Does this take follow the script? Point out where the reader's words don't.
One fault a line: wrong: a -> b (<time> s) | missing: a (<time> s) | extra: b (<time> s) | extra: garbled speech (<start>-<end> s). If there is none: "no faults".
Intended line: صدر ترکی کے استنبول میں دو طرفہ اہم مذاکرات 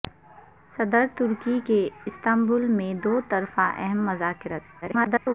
extra: garbled speech (4.8-5.3 s)